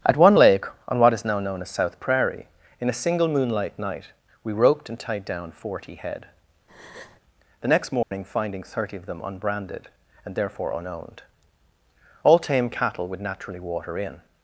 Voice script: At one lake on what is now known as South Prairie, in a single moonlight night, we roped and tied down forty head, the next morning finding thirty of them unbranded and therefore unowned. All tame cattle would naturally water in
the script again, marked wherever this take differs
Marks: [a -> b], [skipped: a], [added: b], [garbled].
At one lake on what is now known as South Prairie, in a single moonlight night, we roped and tied down forty head, the next morning finding thirty of them unbranded and therefore unowned. All tame cattle would naturally water in